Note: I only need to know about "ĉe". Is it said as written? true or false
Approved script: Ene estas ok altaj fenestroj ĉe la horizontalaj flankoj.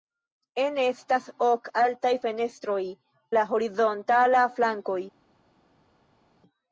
false